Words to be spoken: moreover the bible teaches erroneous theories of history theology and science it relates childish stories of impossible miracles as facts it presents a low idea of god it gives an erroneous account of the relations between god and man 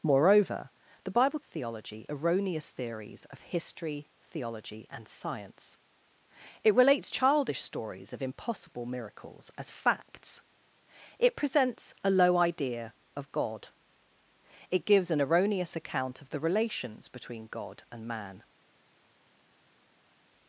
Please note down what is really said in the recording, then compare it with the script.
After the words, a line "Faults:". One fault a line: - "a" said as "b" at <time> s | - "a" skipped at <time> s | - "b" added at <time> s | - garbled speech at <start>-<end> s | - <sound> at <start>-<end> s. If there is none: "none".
moreover the bible theology erroneous theories of history theology and science it relates childish stories of impossible miracles as facts it presents a low idea of god it gives an erroneous account of the relations between god and man
Faults:
- "teaches" said as "theology" at 1.5 s